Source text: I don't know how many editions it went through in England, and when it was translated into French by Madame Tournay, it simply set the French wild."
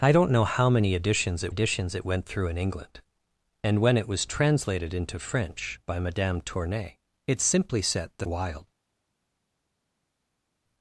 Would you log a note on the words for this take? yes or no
yes